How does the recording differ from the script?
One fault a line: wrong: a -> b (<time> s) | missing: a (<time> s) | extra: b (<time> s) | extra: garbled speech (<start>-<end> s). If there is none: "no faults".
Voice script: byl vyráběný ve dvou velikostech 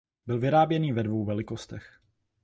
no faults